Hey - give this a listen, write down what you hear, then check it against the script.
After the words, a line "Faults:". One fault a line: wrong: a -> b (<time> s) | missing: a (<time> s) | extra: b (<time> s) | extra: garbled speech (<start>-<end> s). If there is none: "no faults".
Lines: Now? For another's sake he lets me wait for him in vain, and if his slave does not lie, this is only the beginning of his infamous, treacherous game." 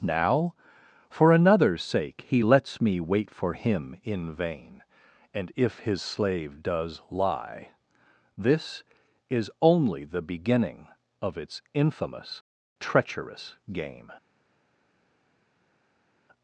Now? For another's sake he lets me wait for him in vain, and if his slave does lie, this is only the beginning of its infamous, treacherous game."
Faults:
missing: not (7.0 s)
wrong: his -> its (11.4 s)